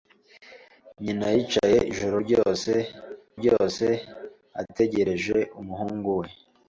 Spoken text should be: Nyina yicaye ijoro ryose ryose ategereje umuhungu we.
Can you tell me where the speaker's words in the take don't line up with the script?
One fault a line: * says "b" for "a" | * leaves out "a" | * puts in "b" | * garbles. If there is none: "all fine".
all fine